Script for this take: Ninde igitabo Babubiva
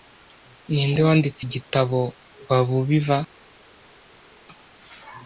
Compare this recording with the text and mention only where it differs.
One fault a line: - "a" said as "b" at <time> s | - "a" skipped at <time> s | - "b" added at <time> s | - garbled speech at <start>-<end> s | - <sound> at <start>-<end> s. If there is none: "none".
- "wanditse" added at 1.1 s